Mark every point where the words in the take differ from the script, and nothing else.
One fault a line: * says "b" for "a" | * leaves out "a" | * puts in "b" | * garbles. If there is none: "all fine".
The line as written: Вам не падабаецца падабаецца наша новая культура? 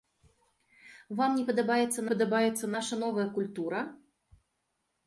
all fine